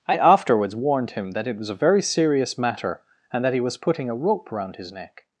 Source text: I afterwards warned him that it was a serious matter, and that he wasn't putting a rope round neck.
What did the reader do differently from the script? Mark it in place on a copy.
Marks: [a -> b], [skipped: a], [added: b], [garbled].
I afterwards warned him that it was a [added: very] serious matter, and that he [wasn't -> was] putting a rope round [added: his] neck.